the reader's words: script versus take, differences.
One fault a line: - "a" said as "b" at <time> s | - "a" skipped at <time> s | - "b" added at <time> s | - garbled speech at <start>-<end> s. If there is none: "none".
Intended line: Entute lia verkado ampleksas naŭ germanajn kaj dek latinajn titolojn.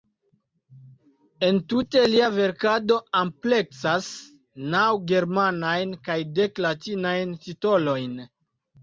none